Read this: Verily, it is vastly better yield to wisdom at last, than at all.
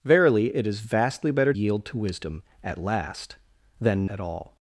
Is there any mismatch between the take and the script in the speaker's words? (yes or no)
no